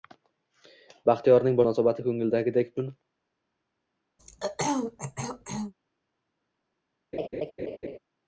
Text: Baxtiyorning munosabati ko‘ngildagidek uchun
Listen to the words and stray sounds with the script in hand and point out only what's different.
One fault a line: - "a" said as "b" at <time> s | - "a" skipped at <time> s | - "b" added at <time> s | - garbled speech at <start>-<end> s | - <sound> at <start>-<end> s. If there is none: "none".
- throat clearing at 4.2-5.7 s
- laugh at 7.1-8.0 s